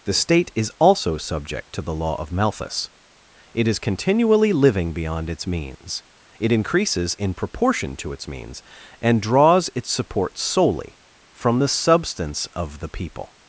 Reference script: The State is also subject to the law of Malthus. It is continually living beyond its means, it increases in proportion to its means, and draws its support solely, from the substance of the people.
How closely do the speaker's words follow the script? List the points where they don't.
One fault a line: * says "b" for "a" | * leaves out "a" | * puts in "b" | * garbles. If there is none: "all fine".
all fine